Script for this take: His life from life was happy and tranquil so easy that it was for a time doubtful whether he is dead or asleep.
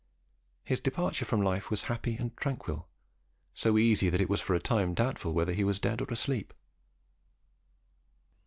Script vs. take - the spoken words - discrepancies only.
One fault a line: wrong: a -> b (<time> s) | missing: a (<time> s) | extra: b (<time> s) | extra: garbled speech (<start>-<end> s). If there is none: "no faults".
wrong: life -> departure (0.8 s)
wrong: is -> was (5.6 s)